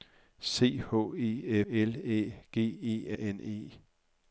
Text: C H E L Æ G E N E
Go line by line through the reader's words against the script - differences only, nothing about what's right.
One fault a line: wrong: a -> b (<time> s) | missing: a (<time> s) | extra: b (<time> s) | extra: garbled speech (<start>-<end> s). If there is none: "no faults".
no faults